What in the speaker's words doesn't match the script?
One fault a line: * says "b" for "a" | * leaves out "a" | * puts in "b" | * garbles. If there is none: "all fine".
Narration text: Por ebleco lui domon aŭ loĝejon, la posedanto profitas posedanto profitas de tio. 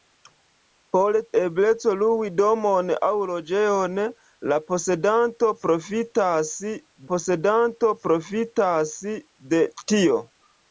all fine